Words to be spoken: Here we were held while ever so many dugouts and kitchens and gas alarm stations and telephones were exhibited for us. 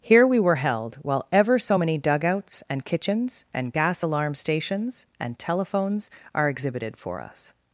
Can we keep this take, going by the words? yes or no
no